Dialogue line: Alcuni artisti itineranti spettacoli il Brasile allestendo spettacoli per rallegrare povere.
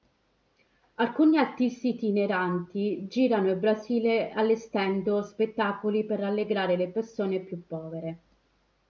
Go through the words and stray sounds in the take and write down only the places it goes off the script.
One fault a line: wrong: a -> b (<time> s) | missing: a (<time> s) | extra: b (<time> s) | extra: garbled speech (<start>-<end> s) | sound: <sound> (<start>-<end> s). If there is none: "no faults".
wrong: spettacoli -> girano (3.1 s)
extra: le persone più (6.8 s)